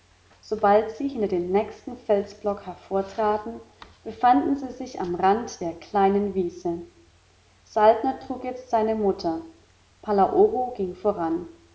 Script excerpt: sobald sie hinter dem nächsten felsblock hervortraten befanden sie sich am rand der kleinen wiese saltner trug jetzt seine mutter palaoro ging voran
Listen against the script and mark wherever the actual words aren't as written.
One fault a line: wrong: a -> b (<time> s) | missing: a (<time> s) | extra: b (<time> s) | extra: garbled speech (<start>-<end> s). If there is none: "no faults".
no faults